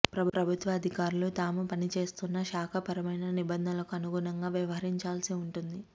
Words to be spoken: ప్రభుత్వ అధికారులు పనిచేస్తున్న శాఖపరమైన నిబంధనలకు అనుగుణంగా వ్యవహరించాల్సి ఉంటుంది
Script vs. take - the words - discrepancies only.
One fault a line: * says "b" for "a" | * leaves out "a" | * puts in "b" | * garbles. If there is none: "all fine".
* puts in "తాము"